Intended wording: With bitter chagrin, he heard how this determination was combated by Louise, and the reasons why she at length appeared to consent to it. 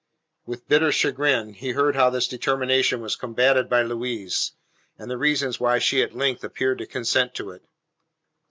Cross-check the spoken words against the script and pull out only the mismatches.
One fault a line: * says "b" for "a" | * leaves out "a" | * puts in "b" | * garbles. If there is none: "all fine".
all fine